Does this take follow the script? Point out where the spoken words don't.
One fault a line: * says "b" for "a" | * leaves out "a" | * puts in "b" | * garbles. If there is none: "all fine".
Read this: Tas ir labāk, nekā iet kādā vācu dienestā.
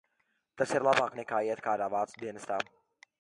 all fine